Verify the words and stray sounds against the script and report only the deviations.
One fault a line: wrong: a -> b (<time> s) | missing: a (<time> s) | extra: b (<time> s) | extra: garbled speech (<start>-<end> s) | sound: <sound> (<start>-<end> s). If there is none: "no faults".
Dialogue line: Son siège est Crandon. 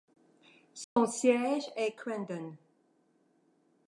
sound: dropout (0.8-1.0 s)